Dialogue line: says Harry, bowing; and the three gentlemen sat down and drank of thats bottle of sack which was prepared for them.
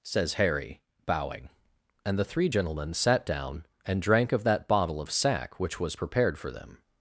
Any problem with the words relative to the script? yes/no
yes